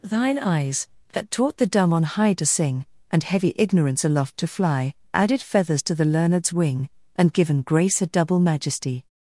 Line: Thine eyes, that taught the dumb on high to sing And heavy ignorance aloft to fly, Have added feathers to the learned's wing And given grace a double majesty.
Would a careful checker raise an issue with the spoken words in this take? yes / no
yes